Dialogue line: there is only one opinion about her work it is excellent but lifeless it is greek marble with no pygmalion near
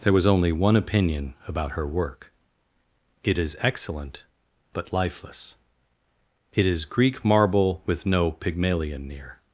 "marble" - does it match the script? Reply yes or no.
yes